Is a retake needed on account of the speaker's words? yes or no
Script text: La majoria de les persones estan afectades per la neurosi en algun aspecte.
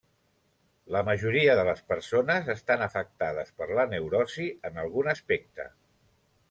no